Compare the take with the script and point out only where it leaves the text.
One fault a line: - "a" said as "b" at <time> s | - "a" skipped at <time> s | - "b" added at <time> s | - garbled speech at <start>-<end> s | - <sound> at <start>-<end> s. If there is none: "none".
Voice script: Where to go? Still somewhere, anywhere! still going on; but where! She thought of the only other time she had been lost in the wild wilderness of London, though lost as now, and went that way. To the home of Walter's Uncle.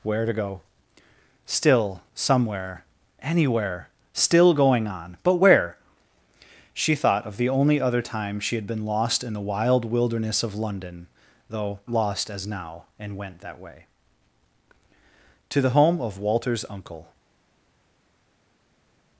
none